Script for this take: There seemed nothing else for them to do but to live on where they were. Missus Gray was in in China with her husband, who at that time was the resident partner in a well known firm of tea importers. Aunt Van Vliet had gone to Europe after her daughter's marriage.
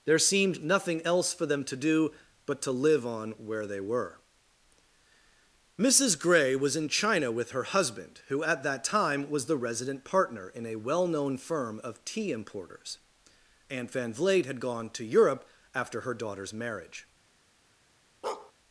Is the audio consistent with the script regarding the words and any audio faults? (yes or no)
no